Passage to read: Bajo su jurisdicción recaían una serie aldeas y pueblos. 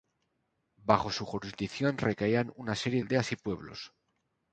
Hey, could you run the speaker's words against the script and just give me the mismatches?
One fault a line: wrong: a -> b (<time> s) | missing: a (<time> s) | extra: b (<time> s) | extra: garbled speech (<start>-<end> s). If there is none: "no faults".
no faults